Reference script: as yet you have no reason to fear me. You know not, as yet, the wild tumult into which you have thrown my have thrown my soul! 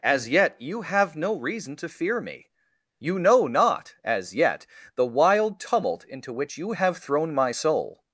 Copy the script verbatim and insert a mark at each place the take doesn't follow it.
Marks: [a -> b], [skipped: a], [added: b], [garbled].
as yet you have no reason to fear me. You know not, as yet, the wild tumult into which you have thrown my [skipped: have thrown my] soul!